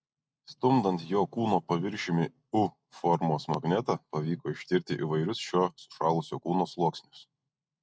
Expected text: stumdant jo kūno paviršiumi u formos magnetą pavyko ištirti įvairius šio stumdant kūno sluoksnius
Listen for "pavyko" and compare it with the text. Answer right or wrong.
right